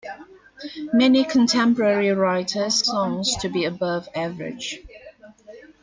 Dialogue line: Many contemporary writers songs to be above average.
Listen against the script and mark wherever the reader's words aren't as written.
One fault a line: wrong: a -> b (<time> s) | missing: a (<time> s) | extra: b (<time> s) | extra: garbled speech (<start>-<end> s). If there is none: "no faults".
no faults